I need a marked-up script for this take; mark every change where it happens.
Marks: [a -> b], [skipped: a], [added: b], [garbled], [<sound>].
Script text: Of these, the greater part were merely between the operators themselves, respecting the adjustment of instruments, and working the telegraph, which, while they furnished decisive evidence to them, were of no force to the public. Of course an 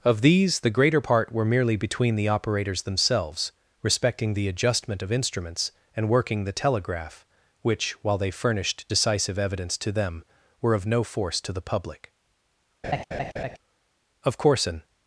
Of these, the greater part were merely between the operators themselves, respecting the adjustment of instruments, and working the telegraph, which, while they furnished decisive evidence to them, were of no force to the public. [laugh] Of course an